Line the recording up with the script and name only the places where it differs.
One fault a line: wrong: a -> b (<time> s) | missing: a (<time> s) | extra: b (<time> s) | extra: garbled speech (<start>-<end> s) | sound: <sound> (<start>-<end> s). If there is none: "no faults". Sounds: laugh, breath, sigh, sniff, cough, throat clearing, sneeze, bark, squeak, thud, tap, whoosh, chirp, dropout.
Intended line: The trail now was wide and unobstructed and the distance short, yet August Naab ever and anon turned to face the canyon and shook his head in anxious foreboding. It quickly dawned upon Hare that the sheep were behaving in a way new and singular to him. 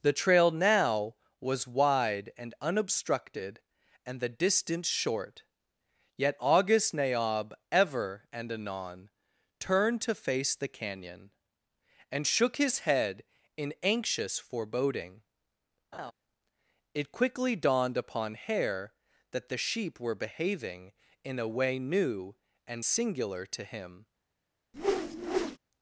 sound: laugh (15.9-16.1 s)
sound: whoosh (24.7-25.6 s)